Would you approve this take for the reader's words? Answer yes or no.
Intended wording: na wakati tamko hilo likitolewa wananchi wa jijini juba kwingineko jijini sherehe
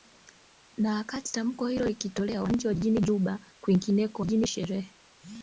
yes